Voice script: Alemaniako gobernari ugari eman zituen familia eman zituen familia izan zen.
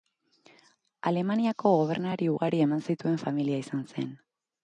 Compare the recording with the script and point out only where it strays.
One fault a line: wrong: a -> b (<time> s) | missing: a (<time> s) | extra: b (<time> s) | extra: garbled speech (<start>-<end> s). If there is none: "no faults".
missing: eman zituen familia (3.6 s)